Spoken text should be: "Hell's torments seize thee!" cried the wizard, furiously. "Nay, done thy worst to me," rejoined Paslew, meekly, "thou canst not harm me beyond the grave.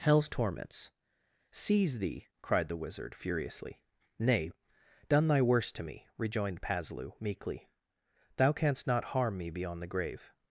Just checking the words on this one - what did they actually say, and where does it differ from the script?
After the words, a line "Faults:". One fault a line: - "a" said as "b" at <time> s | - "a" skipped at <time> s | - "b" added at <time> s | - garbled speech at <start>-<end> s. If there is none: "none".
"Hell's torments seize thee!" cried the wizard, furiously. "Nay, done thy worst to me," rejoined Paslew, meekly, "thou canst not harm me beyond the grave.
Faults:
none